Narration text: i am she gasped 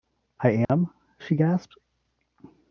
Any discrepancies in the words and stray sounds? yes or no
yes